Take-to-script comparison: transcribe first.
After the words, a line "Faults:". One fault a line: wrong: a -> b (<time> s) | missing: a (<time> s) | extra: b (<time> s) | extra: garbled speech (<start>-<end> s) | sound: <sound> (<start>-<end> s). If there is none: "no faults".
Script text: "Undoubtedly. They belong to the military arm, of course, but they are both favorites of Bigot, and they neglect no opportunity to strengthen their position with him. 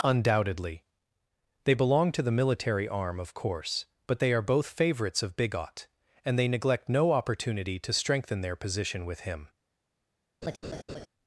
"Undoubtedly. They belong to the military arm, of course, but they are both favorites of Bigot, and they neglect no opportunity to strengthen their position with him.
Faults:
sound: laugh (10.4-11.1 s)